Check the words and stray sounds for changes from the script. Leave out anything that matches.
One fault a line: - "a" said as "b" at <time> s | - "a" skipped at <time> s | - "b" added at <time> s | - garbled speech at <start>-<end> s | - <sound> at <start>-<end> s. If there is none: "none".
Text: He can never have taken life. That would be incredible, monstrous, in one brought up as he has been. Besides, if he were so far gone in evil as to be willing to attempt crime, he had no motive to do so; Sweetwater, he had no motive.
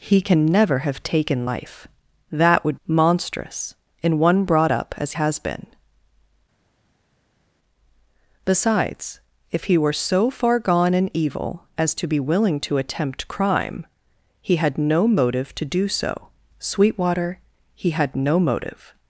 - "be incredible" skipped at 2.8 s
- "he" skipped at 5.1 s